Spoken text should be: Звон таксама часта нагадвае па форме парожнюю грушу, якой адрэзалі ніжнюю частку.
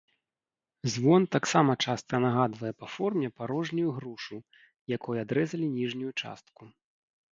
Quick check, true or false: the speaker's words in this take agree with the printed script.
true